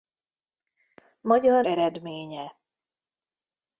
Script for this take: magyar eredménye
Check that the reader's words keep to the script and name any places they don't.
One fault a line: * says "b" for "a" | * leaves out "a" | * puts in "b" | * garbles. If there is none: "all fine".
all fine